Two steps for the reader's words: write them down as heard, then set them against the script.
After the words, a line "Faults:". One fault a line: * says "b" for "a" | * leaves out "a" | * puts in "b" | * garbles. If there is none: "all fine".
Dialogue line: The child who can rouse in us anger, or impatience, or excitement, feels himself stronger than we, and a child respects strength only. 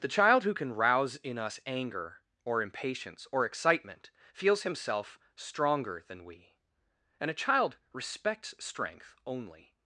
The child who can rouse in us anger, or impatience, or excitement, feels himself stronger than we, and a child respects strength only.
Faults:
all fine